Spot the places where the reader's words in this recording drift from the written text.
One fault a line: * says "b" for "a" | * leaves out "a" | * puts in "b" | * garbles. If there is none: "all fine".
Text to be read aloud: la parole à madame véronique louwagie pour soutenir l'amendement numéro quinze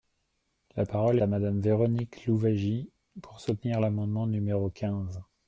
all fine